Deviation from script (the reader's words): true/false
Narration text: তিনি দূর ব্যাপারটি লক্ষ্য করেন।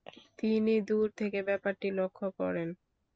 true